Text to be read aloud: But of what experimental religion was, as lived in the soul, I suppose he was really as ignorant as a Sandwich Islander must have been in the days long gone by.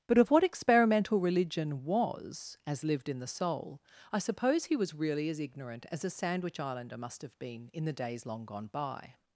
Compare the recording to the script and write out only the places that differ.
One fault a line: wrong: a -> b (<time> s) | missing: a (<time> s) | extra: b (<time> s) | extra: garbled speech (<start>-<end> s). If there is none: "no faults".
no faults